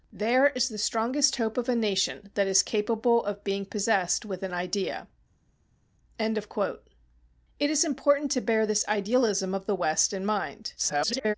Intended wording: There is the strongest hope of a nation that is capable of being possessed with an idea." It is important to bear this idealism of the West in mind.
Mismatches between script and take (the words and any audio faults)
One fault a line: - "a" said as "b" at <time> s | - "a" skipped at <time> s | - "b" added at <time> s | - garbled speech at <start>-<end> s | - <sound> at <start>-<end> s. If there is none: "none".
- garbled speech at 10.8-11.3 s